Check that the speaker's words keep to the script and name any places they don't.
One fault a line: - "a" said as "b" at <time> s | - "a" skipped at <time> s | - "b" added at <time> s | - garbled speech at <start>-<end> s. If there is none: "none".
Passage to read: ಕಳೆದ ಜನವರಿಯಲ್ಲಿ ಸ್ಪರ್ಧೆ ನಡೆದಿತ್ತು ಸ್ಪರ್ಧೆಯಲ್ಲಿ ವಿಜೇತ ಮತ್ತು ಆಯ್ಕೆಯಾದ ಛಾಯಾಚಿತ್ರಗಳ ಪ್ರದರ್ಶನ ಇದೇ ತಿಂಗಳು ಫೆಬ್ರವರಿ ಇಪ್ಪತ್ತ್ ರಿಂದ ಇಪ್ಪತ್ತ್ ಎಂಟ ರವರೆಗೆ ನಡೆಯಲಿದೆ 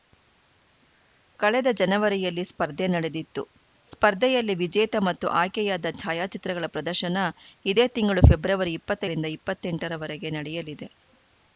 none